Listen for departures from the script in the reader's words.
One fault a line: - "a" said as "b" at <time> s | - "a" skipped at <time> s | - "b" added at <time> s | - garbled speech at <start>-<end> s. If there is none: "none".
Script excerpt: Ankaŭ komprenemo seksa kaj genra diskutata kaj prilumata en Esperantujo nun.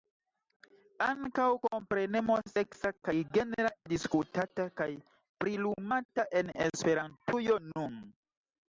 none